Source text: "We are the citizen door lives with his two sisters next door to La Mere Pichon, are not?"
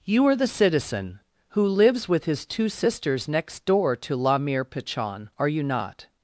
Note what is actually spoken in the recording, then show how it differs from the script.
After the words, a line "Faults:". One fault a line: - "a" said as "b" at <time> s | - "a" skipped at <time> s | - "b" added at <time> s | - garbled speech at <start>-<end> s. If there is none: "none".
"You are the citizen who lives with his two sisters next door to La Mere Pichon, are you not?"
Faults:
- "We" said as "You" at 0.0 s
- "door" said as "who" at 1.5 s
- "you" added at 5.5 s